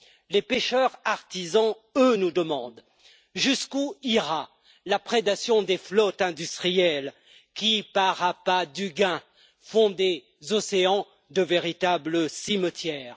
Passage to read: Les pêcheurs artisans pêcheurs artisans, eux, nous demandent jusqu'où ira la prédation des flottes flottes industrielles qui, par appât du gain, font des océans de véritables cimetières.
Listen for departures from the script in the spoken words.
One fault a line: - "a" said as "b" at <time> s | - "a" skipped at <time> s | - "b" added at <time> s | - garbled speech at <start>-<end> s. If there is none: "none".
- "pêcheurs artisans" skipped at 1.8 s
- "flottes" skipped at 6.2 s